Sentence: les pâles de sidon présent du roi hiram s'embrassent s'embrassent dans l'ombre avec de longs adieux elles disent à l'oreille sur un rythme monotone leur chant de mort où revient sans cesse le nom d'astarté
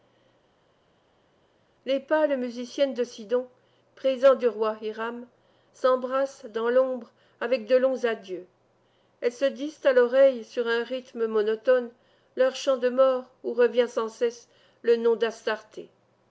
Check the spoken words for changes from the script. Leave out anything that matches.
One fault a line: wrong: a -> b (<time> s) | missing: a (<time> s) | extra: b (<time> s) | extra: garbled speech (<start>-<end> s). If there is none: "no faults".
extra: musiciennes (2.4 s)
missing: s'embrassent (6.5 s)
extra: se (9.3 s)